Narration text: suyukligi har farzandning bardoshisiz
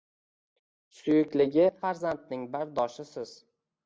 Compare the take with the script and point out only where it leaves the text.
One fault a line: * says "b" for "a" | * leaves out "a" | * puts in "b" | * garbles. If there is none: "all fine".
* leaves out "har"